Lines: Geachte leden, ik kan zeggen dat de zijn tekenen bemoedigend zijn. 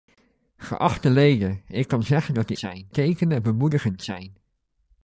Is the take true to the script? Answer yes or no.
yes